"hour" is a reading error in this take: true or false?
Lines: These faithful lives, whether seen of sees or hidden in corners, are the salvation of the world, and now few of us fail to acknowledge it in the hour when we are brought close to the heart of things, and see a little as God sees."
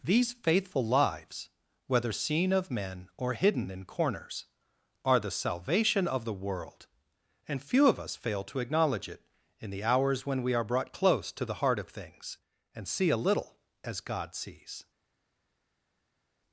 true